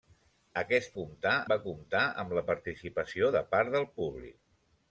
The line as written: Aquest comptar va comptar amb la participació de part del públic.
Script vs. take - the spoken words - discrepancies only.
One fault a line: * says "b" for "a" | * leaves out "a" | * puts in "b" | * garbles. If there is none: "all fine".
all fine